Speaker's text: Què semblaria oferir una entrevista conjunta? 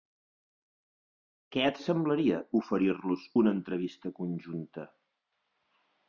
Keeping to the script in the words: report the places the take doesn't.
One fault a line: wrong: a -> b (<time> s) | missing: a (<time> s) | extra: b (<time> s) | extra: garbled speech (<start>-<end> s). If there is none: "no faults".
extra: et (1.7 s)
extra: los (3.1 s)